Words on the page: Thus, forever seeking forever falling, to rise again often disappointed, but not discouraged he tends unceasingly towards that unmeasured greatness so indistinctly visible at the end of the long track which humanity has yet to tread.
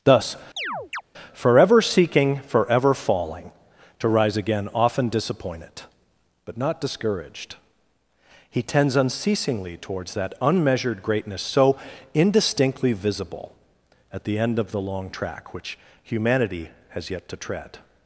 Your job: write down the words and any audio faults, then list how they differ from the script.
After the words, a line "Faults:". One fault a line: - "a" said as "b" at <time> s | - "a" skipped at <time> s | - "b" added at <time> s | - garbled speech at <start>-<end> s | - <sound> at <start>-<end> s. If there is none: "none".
Thus, forever seeking forever falling, to rise again often disappointed, but not discouraged he tends unceasingly towards that unmeasured greatness so indistinctly visible at the end of the long track which humanity has yet to tread.
Faults:
- chirp at 0.6-1.0 s